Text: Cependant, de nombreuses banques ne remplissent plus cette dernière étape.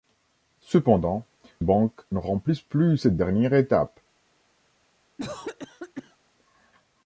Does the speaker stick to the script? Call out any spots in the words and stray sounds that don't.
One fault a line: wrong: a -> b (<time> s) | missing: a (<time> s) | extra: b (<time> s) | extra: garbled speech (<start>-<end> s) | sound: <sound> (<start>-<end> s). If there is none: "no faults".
missing: de nombreuses (1.3 s)
sound: cough (5.2-6.2 s)